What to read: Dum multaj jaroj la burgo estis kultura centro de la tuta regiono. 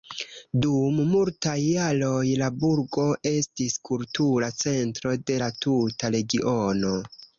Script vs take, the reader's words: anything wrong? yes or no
no